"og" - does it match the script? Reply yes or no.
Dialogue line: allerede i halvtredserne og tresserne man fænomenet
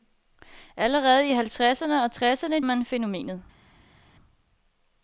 yes